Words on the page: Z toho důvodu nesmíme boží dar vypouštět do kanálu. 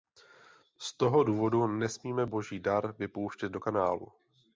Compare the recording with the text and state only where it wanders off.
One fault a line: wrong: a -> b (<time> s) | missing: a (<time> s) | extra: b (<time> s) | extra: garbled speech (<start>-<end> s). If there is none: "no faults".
no faults